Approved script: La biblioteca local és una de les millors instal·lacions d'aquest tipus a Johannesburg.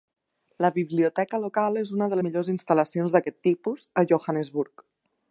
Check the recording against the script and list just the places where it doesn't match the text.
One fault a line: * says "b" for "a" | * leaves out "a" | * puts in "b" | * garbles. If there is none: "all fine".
* leaves out "les"